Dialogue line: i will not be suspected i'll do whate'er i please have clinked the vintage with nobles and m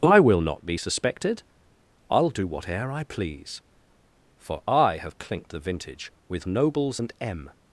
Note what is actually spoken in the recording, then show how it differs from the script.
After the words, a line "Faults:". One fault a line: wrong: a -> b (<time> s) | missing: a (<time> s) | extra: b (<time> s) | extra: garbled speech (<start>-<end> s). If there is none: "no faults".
i will not be suspected i'll do whate'er i please for i have clinked the vintage with nobles and m
Faults:
extra: for i (4.4 s)